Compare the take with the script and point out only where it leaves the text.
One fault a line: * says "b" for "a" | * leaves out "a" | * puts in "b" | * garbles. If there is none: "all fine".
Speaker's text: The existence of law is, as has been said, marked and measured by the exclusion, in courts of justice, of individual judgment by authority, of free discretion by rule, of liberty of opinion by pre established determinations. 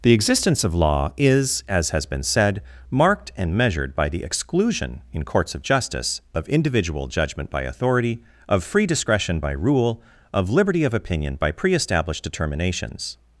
all fine